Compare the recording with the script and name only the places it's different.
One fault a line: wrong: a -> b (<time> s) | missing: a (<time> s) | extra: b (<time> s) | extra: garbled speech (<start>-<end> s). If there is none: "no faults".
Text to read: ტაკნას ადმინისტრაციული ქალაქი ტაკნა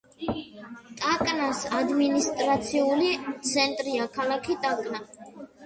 extra: ცენტრია (3.5 s)